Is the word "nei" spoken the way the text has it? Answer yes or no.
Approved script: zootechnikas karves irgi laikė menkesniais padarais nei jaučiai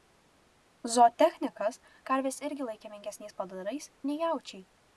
yes